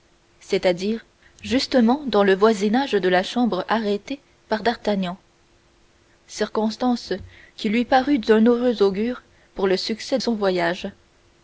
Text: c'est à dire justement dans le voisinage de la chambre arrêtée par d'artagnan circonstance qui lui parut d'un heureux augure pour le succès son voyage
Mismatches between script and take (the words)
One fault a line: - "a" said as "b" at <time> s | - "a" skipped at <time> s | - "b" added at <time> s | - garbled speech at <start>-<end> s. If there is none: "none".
none